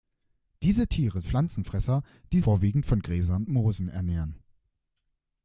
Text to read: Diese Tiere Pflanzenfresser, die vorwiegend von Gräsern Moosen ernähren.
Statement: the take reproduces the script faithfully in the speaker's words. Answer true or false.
true